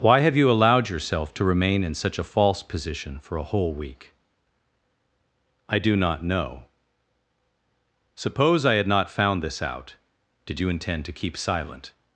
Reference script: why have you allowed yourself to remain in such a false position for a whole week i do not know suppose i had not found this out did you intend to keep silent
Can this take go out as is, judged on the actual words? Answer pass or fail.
pass